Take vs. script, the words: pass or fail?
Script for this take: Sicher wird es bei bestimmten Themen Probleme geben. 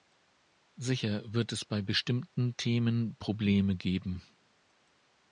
pass